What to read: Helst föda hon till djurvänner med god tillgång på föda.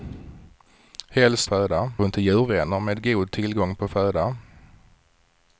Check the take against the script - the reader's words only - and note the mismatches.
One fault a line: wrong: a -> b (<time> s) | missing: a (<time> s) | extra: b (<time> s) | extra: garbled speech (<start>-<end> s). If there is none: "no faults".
no faults